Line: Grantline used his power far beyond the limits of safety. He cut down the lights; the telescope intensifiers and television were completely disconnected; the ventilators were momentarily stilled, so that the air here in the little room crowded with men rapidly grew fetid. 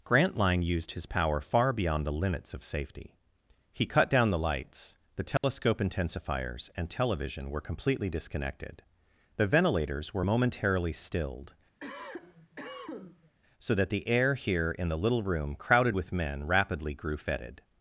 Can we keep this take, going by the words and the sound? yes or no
no